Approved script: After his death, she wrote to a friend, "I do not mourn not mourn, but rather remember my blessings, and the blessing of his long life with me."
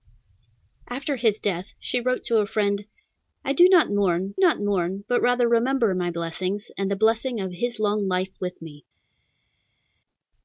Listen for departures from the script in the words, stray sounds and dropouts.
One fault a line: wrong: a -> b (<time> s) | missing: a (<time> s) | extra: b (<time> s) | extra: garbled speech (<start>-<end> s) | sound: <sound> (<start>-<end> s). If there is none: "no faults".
no faults